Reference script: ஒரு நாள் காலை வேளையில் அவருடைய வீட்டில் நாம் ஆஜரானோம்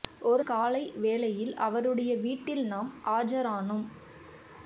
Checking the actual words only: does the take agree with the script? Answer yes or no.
no